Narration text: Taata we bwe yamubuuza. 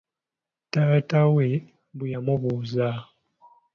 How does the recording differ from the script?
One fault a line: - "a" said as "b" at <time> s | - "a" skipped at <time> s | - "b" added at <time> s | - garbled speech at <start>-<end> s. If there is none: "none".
none